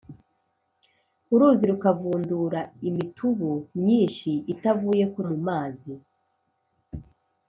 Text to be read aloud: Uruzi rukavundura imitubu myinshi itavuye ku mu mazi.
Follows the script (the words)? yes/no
yes